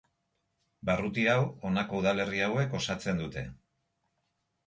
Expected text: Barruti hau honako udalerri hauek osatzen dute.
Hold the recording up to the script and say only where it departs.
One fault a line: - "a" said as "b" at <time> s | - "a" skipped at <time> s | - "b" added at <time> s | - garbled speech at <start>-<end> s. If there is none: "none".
none